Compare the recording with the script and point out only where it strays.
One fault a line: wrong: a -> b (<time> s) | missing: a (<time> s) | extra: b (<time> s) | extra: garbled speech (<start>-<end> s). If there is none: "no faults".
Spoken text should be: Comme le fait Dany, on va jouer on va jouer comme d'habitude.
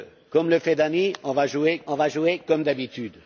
no faults